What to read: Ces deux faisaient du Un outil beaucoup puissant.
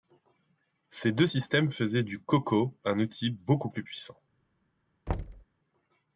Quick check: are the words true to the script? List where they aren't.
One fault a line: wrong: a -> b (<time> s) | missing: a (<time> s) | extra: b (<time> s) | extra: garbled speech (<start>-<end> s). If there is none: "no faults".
extra: systèmes (1.2 s)
extra: CoCo (2.2 s)
extra: plus (3.7 s)